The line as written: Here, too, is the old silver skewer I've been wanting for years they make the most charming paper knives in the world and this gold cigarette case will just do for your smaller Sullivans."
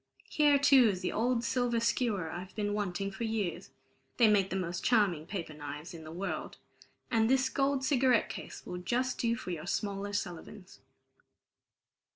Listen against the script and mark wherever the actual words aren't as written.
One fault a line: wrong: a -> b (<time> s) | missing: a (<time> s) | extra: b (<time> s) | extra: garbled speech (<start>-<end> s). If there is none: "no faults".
no faults